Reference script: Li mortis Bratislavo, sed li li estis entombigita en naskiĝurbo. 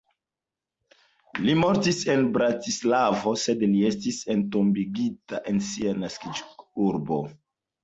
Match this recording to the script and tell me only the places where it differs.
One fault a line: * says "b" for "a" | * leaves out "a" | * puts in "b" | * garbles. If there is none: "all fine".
* puts in "en"
* leaves out "li"
* puts in "sia"